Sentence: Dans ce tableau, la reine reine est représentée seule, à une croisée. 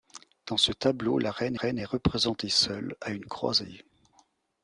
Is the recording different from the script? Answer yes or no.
no